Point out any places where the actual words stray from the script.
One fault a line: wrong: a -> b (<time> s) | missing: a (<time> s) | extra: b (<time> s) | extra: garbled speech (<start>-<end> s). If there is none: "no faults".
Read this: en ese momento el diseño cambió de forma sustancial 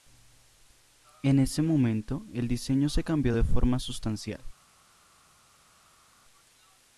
extra: se (2.9 s)